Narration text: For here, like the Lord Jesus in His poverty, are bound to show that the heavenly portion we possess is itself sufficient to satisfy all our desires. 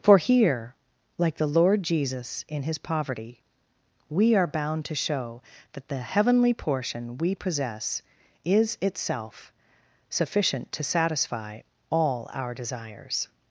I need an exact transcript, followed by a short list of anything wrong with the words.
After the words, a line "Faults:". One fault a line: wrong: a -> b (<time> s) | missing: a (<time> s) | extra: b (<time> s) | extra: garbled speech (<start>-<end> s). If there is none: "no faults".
For here, like the Lord Jesus in His poverty, we are bound to show that the heavenly portion we possess is itself sufficient to satisfy all our desires.
Faults:
extra: we (4.1 s)